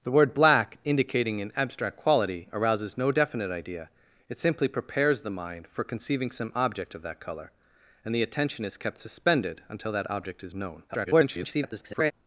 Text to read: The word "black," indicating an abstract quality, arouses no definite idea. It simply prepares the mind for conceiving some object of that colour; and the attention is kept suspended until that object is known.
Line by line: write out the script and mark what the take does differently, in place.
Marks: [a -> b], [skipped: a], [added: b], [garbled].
The word "black," indicating an abstract quality, arouses no definite idea. It simply prepares the mind for conceiving some object of that colour; and the attention is kept suspended until that object is known. [garbled]